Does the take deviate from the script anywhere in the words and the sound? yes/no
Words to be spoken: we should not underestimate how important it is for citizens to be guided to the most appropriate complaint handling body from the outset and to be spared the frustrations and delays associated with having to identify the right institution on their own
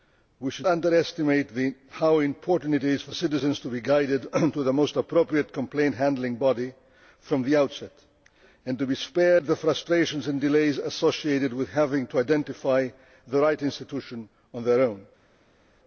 yes